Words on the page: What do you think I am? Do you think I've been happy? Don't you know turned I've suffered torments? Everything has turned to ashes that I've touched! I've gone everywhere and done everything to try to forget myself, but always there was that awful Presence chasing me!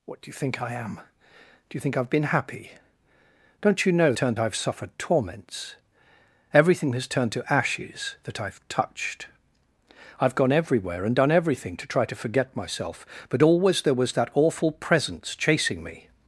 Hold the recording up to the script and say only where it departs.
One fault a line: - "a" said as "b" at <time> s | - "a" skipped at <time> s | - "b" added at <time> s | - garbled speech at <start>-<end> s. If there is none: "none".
none